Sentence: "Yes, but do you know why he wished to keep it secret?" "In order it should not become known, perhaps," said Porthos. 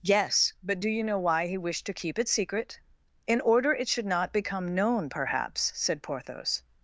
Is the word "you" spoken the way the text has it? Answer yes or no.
yes